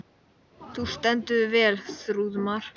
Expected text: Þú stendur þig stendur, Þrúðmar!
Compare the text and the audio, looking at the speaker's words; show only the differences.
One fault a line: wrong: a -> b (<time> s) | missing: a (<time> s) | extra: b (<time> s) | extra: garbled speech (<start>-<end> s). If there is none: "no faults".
wrong: stendur -> vel (1.6 s)